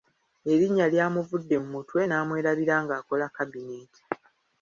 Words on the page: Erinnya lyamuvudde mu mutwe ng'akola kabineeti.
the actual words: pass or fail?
fail